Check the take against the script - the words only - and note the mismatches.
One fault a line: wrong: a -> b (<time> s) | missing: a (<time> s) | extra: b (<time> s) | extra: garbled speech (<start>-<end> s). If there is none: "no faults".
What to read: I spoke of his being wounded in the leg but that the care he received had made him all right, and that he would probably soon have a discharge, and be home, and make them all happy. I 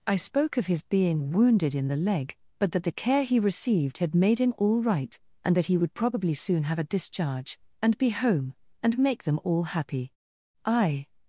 no faults